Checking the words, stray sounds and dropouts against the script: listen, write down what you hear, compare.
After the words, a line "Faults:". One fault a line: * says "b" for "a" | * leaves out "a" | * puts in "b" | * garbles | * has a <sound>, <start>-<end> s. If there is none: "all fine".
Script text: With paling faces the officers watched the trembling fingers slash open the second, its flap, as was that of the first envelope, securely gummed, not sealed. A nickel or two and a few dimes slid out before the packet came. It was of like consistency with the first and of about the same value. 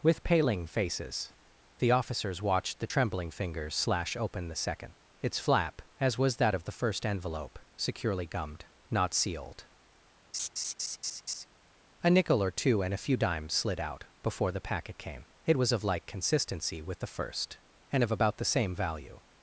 With paling faces the officers watched the trembling fingers slash open the second, its flap, as was that of the first envelope, securely gummed, not sealed. A nickel or two and a few dimes slid out before the packet came. It was of like consistency with the first and of about the same value.
Faults:
* has a laugh, 10.3-11.5 s